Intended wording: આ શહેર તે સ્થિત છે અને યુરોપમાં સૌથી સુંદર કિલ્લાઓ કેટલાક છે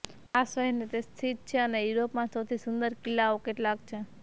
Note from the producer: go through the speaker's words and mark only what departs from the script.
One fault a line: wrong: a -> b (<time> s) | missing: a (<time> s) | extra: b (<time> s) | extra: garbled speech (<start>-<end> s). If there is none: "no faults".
no faults